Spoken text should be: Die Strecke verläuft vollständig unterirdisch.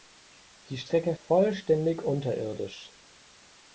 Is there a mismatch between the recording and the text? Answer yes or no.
yes